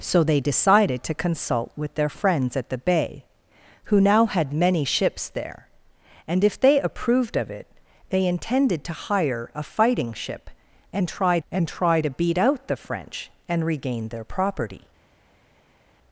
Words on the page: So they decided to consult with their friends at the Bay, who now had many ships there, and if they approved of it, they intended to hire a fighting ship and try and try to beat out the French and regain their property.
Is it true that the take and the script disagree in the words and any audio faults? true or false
false